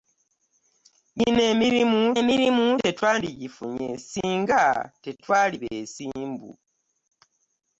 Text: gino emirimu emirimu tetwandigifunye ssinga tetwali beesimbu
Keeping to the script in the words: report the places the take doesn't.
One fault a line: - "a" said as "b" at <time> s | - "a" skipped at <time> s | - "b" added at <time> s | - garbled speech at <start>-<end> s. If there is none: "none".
none